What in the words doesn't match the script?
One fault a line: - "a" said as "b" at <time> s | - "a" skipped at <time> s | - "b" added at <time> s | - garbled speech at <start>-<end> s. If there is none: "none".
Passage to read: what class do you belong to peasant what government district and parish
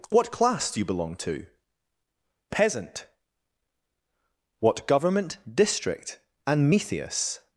- "parish" said as "metheus" at 6.7 s